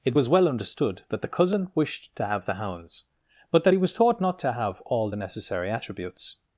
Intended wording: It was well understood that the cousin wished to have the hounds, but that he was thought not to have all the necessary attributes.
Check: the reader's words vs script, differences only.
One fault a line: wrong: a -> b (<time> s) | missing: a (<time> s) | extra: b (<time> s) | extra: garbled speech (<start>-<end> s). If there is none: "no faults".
no faults